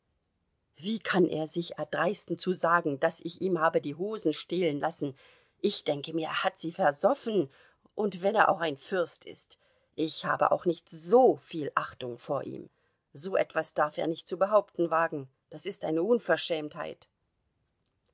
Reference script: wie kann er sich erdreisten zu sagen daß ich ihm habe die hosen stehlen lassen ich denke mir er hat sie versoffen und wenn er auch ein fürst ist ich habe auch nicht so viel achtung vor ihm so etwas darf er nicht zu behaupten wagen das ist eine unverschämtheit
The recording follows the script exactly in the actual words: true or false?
true